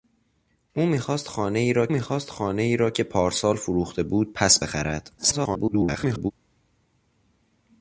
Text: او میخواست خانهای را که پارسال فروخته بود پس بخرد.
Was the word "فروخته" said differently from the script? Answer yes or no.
no